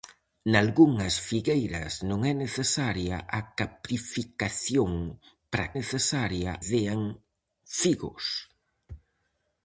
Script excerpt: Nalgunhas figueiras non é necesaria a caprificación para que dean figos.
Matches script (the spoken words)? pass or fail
fail